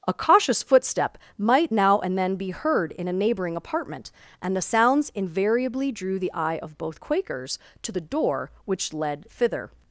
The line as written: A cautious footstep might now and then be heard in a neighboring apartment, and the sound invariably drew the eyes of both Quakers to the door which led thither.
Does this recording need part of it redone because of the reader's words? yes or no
yes